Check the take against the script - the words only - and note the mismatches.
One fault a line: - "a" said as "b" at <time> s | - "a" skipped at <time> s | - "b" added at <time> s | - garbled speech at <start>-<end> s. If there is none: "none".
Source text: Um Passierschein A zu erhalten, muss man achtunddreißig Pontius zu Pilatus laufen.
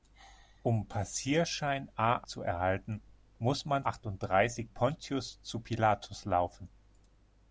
none